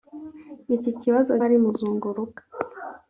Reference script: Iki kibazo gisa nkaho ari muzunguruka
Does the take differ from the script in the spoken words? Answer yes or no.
yes